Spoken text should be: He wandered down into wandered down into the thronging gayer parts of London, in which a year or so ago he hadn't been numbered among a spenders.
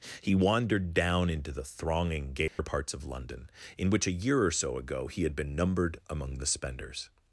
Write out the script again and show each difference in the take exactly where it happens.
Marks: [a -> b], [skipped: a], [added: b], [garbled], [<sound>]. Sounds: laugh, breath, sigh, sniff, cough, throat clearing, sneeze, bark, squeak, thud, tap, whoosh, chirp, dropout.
He wandered down into [skipped: wandered down into] the thronging gayer [dropout] parts of London, in which a year or so ago he [hadn't -> had] been numbered among [a -> the] spenders.